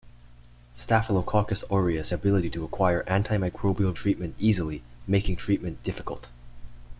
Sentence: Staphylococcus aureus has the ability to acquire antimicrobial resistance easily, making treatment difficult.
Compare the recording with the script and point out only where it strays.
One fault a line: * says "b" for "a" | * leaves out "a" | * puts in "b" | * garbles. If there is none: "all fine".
* leaves out "has the"
* says "treatment" for "resistance"